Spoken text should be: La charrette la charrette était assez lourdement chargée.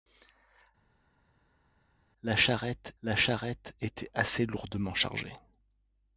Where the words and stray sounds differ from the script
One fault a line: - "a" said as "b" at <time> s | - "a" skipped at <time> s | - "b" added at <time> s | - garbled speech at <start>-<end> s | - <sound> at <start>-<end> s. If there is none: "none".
none